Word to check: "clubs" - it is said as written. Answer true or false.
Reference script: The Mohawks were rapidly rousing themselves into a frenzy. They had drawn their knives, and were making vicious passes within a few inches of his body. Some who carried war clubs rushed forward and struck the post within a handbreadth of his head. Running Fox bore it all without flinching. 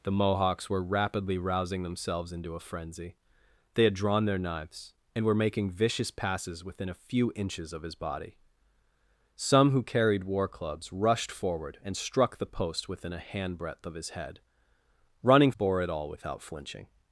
true